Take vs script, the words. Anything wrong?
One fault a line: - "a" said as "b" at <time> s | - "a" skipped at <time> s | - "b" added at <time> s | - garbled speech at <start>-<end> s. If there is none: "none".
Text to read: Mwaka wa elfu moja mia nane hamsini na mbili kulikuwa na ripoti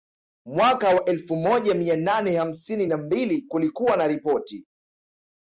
none